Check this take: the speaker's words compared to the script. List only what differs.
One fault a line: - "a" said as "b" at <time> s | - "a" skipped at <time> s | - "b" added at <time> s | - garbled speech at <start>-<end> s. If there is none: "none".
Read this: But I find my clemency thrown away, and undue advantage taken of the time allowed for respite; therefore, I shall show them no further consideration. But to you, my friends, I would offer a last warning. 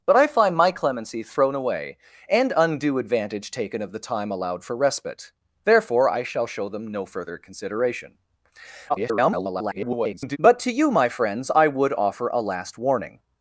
- garbled speech at 8.9-10.4 s